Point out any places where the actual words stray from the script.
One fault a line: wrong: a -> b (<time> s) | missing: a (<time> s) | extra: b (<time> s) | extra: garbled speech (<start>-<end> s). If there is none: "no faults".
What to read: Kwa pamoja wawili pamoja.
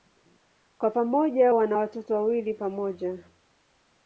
extra: wana watoto (1.5 s)